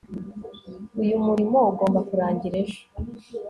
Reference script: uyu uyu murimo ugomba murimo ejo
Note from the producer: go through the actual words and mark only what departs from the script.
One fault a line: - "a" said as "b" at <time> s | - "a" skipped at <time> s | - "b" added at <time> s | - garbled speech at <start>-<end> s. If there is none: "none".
- "uyu" skipped at 1.1 s
- "murimo" said as "kurangira" at 2.1 s